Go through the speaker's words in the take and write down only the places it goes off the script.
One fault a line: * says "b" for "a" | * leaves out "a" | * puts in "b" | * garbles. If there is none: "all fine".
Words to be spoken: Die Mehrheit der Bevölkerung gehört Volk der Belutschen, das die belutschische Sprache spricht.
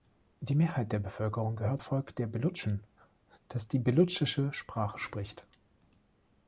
all fine